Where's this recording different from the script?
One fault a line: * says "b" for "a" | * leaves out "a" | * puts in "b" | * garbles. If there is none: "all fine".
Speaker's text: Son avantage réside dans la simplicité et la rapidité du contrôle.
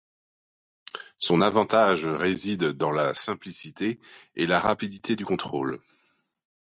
all fine